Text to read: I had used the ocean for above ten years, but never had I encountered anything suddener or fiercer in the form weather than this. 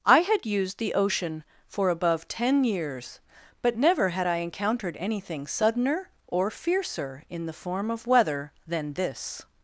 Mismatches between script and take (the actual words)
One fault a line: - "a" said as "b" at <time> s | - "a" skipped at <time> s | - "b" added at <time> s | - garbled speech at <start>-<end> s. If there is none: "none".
- "of" added at 7.9 s